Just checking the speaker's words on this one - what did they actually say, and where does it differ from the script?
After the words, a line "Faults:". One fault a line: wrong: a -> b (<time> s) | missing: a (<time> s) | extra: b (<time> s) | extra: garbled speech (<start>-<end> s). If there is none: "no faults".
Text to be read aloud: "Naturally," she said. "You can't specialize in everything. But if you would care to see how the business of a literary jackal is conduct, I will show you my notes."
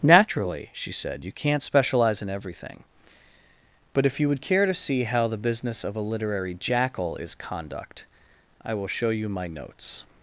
"Naturally," she said. "You can't specialize in everything. But if you would care to see how the business of a literary jackal is conduct, I will show you my notes."
Faults:
no faults